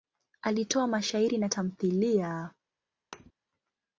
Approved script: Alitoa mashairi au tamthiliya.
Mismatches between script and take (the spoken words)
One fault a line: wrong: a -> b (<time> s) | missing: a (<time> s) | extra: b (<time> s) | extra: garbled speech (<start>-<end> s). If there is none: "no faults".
wrong: au -> na (1.4 s)